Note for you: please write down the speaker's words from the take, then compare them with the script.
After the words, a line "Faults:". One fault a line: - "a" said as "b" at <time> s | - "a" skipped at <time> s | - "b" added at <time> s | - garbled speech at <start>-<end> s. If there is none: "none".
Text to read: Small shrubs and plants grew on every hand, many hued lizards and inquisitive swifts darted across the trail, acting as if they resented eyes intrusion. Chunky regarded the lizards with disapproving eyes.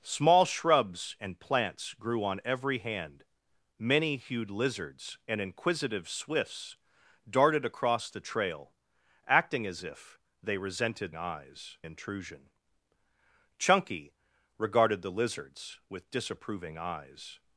Small shrubs and plants grew on every hand, many hued lizards and inquisitive swifts darted across the trail, acting as if they resented eyes intrusion. Chunky regarded the lizards with disapproving eyes.
Faults:
none